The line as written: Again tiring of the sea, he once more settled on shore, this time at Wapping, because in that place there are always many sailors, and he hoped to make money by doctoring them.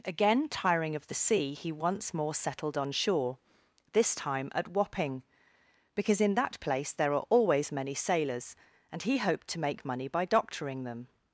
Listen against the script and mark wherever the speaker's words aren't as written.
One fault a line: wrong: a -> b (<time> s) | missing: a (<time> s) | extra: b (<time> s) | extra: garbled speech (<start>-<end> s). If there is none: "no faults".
no faults